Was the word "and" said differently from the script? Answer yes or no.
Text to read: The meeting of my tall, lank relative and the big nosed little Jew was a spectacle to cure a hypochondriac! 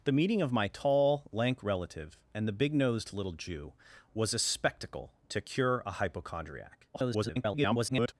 no